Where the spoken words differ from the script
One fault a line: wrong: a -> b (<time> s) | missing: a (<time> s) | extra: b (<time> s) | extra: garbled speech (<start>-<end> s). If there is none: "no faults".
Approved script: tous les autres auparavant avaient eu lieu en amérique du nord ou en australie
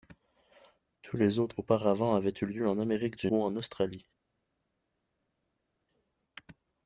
missing: nord (3.3 s)